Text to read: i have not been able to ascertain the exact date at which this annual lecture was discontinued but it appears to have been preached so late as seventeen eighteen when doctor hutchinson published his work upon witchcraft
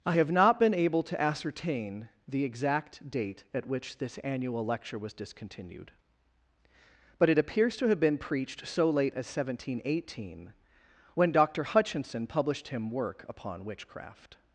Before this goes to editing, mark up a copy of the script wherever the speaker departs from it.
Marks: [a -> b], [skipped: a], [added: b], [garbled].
i have not been able to ascertain the exact date at which this annual lecture was discontinued but it appears to have been preached so late as seventeen eighteen when doctor hutchinson published [his -> him] work upon witchcraft